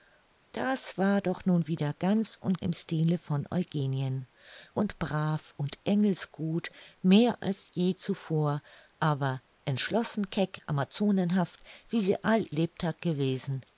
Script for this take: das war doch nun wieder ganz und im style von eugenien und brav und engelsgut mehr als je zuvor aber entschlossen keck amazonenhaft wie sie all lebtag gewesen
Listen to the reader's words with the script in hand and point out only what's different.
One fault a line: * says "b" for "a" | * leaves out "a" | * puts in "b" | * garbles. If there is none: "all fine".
all fine